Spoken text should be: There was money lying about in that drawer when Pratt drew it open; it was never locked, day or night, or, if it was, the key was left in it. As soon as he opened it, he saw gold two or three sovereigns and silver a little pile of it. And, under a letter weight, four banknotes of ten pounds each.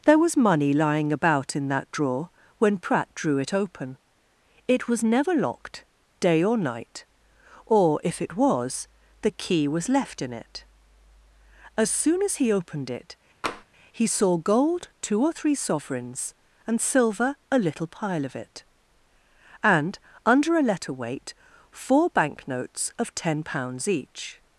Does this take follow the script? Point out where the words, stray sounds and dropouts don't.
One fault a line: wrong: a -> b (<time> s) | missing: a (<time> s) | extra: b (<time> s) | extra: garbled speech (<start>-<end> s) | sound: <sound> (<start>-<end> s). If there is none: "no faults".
sound: tap (13.4-13.6 s)